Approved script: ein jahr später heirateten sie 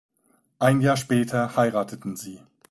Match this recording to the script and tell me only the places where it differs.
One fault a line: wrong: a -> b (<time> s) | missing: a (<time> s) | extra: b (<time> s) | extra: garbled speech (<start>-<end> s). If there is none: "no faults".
no faults